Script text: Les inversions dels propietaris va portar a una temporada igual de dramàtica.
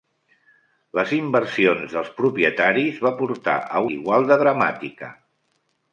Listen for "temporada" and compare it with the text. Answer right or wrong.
wrong